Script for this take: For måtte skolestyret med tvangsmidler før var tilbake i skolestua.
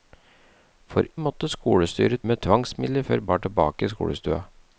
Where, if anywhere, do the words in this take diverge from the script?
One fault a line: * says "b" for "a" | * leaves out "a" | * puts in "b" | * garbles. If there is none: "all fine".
all fine